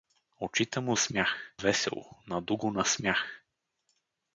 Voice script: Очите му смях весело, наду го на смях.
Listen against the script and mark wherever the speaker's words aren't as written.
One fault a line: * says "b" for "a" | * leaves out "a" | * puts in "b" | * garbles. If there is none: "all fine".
all fine